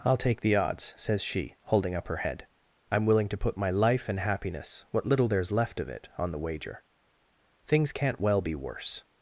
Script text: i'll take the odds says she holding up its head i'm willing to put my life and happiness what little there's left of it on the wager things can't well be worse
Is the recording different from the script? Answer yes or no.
yes